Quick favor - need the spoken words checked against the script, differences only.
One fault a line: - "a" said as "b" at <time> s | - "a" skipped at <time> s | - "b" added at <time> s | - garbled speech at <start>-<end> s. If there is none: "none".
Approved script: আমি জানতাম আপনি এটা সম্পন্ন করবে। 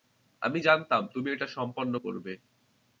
- "আপনি" said as "তুমি" at 1.1 s